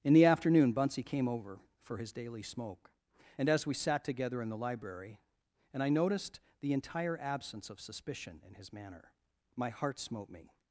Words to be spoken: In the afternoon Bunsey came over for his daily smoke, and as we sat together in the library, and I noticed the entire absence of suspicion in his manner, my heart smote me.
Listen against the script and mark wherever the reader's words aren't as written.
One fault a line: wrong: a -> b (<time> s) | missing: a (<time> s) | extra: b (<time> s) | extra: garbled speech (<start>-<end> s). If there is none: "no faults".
no faults